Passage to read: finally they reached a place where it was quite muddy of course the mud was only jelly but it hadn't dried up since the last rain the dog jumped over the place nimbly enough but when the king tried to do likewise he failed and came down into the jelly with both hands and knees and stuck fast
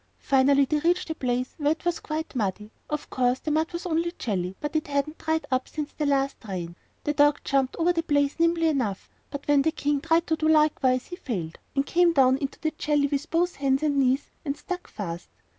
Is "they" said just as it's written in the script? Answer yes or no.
yes